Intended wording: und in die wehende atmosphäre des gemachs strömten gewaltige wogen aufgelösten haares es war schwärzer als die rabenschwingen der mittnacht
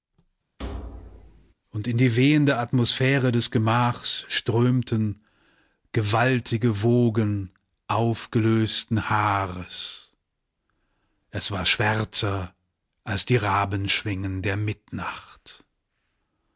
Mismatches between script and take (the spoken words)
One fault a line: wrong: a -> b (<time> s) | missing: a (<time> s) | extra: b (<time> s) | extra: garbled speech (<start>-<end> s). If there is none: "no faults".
no faults